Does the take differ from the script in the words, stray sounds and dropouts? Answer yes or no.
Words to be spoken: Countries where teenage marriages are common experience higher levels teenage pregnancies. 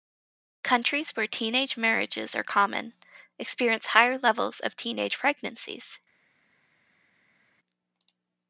yes